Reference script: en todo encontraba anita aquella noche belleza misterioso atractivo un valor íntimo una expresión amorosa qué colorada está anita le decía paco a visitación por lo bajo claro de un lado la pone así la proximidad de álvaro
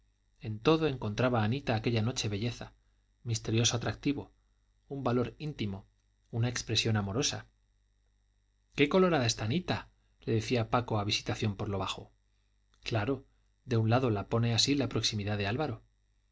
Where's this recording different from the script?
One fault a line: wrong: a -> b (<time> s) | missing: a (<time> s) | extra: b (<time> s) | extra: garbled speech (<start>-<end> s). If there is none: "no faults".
no faults